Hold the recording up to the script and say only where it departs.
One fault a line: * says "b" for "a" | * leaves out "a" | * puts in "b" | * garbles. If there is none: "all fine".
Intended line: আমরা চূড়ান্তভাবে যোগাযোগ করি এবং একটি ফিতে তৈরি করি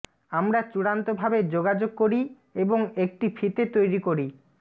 all fine